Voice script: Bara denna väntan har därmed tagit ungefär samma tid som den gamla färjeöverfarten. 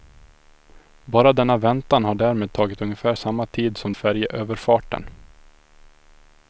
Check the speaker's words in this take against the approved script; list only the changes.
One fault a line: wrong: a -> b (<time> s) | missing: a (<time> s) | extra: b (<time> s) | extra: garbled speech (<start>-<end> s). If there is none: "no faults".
missing: den gamla (3.9 s)